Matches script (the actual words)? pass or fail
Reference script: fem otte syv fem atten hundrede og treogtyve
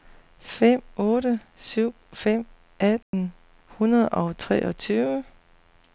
pass